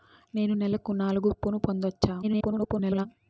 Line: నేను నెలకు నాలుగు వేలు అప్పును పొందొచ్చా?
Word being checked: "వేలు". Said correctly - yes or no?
no